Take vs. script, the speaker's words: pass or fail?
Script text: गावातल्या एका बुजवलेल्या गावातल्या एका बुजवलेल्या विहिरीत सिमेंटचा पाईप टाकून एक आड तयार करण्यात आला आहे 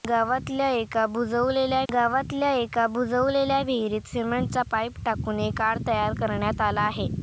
pass